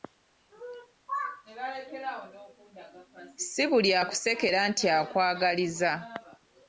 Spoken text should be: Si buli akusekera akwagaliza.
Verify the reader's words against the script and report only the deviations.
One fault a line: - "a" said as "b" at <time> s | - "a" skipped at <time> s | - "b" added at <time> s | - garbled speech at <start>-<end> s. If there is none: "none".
- "nti" added at 4.7 s